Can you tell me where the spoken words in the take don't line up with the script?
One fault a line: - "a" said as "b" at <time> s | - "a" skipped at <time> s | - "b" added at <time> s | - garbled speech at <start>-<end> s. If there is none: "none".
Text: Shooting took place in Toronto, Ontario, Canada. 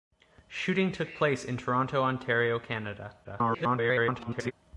- garbled speech at 3.2-4.5 s